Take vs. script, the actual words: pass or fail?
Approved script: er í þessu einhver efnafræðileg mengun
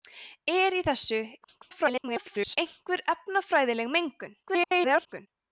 fail